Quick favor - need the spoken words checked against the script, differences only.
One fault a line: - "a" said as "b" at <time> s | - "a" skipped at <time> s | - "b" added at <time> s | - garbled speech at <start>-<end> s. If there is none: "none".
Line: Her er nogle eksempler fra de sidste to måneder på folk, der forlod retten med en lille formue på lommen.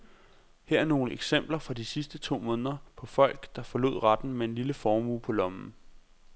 none